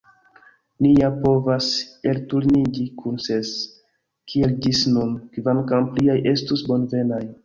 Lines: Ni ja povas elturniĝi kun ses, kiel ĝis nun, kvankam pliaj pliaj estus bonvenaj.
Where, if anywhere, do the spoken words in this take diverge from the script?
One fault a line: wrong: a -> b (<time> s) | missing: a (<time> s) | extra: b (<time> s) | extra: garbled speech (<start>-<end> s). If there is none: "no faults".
missing: pliaj (6.2 s)